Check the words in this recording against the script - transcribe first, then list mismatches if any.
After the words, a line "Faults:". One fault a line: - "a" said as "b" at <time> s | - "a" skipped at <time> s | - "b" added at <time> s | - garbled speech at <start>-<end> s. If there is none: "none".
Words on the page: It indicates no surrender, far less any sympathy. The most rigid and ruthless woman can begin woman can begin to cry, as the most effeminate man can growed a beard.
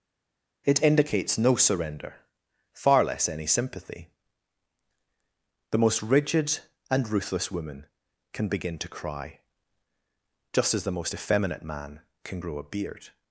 It indicates no surrender, far less any sympathy. The most rigid and ruthless woman can begin to cry, just as the most effeminate man can grow a beard.
Faults:
- "woman can begin" skipped at 8.8 s
- "just" added at 10.5 s
- "growed" said as "grow" at 12.4 s